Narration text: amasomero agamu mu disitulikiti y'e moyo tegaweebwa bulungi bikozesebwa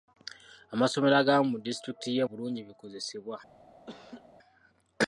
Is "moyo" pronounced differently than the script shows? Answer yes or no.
yes